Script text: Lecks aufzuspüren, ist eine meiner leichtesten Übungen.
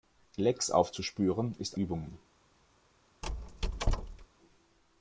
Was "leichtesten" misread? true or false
true